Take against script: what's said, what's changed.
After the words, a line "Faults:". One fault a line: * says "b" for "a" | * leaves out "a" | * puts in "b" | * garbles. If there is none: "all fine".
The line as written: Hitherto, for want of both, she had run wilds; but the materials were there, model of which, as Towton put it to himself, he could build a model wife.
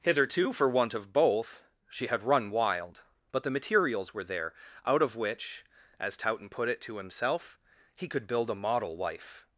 Hitherto, for want of both, she had run wild; but the materials were there, out of which, as Towton put it to himself, he could build a model wife.
Faults:
* says "wild" for "wilds"
* says "out" for "model"